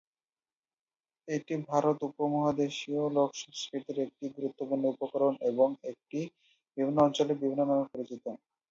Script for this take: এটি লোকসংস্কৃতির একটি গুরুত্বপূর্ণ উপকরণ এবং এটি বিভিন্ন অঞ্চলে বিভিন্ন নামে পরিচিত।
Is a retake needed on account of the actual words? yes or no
yes